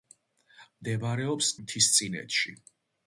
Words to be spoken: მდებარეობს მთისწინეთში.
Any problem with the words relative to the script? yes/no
no